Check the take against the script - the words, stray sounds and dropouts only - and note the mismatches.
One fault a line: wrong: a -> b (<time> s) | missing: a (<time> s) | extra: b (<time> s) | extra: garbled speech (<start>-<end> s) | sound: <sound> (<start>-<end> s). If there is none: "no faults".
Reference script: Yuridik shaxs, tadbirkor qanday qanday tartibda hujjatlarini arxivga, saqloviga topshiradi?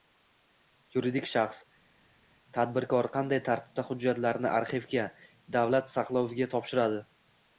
missing: qanday (3.4 s)
extra: davlat (5.6 s)